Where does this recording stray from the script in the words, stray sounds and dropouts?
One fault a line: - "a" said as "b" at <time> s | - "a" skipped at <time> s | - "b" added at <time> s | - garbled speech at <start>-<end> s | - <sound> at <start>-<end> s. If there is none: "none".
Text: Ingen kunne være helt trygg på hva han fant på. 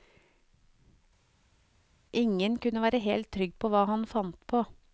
none